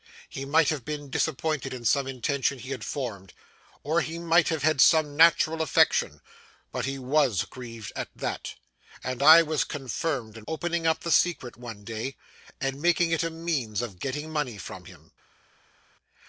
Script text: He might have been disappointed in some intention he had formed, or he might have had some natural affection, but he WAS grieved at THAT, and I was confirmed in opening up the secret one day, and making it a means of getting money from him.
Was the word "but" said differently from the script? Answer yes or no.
no